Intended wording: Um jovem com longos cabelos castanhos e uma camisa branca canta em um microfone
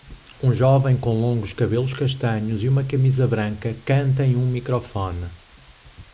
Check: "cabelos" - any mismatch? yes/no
no